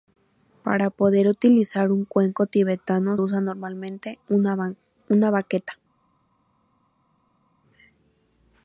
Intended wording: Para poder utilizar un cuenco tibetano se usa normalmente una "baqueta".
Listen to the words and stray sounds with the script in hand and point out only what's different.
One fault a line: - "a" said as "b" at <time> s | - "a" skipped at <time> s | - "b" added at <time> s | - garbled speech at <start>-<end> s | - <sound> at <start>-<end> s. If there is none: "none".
- "se" skipped at 3.2 s